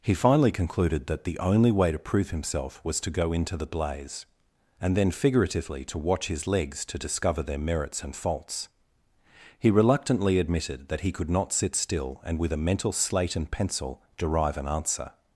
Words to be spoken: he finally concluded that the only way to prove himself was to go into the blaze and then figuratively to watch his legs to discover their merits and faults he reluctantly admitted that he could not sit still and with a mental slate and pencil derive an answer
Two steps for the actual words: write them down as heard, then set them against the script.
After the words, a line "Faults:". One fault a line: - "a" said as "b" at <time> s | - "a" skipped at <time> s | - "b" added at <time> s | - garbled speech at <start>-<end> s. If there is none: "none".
he finally concluded that the only way to prove himself was to go into the blaze and then figuratively to watch his legs to discover their merits and faults he reluctantly admitted that he could not sit still and with a mental slate and pencil derive an answer
Faults:
none